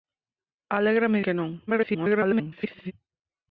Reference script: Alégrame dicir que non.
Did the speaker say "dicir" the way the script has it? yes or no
no